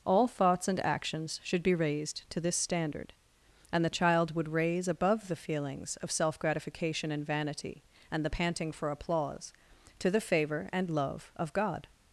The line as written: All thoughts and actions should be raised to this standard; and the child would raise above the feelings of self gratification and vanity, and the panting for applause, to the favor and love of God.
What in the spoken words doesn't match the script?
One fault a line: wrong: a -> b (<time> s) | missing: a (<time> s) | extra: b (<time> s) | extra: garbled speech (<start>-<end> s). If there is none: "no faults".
no faults